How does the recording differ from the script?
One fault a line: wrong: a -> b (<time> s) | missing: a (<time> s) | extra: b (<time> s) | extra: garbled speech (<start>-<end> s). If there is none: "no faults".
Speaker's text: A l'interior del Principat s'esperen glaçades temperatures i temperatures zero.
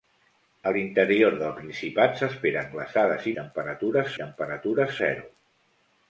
no faults